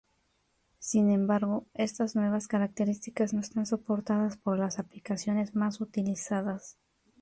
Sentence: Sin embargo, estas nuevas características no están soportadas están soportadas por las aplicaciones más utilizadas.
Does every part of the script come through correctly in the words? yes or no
no